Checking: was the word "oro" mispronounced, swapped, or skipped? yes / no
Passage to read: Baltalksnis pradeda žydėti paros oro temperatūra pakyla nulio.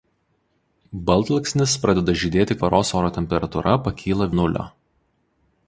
no